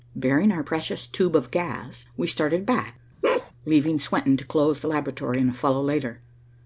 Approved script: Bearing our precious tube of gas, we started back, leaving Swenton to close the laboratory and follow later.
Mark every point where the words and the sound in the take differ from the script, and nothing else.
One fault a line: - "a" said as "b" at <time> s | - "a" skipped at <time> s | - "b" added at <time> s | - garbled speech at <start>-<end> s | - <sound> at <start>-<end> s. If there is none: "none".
- bark at 3.2-3.5 s